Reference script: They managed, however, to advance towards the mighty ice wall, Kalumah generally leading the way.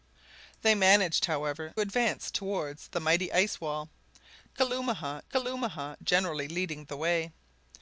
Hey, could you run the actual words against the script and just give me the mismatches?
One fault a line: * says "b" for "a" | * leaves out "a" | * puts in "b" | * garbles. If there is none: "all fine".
* leaves out "to"
* puts in "Kalumah"